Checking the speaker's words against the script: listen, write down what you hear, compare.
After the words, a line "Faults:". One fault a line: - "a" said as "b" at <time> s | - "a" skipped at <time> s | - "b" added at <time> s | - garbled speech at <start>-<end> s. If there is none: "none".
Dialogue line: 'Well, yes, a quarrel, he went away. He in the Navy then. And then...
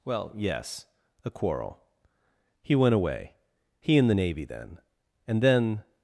'Well, yes, a quarrel, he went away. He in the Navy then. And then...
Faults:
none